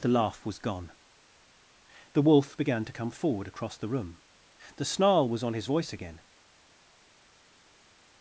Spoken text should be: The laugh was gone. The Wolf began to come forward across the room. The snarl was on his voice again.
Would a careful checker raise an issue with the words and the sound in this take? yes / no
no